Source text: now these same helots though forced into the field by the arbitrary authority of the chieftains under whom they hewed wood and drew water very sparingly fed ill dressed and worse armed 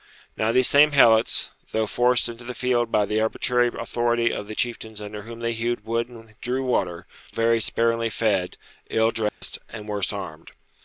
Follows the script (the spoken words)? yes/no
yes